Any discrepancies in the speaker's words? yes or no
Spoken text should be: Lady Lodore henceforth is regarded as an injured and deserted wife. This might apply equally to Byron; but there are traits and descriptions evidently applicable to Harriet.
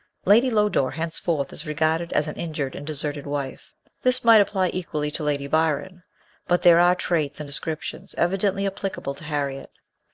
yes